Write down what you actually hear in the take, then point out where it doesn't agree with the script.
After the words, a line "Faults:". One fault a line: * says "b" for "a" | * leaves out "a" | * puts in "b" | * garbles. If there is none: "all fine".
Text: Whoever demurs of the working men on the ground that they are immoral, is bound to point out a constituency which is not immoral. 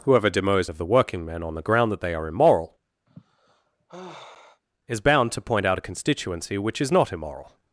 Whoever demurs of the working men on the ground that they are immoral, is bound to point out a constituency which is not immoral.
Faults:
all fine